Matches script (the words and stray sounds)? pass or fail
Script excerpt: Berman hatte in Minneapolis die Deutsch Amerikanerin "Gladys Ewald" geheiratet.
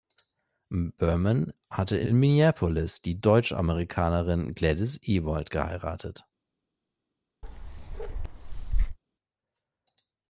fail